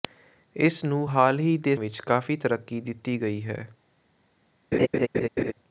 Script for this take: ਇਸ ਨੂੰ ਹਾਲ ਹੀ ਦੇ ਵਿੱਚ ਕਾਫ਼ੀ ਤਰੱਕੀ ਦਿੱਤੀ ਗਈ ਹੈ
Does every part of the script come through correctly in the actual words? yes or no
yes